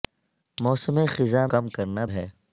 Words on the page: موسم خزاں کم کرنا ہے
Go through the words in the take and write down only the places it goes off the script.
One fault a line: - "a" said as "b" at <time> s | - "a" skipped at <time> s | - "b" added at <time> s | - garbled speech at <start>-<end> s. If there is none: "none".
none